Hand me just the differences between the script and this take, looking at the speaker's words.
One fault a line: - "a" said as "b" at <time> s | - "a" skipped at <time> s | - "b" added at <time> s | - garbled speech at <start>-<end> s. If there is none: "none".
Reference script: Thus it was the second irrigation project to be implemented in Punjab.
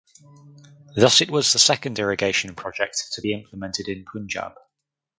none